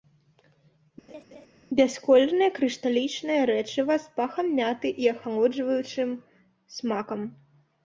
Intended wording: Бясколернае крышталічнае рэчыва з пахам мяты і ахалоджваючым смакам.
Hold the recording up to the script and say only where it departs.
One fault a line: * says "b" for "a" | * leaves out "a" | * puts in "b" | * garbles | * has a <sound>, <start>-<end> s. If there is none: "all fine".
* has a laugh, 1.1-1.5 s